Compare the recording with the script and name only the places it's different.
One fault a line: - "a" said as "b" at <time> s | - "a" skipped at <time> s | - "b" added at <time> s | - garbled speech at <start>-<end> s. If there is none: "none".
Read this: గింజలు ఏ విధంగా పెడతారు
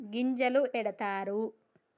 - "ఏ విధంగా" skipped at 0.6 s